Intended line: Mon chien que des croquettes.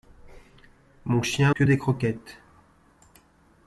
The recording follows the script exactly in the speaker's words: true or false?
true